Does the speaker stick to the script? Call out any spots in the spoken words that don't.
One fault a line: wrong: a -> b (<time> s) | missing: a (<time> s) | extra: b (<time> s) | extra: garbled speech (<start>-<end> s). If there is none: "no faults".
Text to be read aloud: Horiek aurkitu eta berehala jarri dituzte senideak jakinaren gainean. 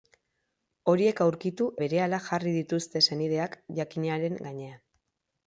missing: eta (1.7 s)